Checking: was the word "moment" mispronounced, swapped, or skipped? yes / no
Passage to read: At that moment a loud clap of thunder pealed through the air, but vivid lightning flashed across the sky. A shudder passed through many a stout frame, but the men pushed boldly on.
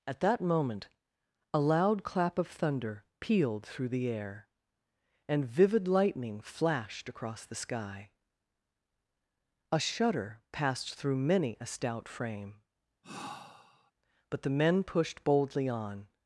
no